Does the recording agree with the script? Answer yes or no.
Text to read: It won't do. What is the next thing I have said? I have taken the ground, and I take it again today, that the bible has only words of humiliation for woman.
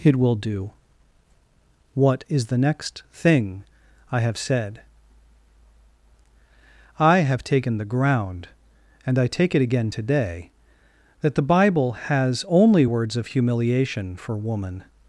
no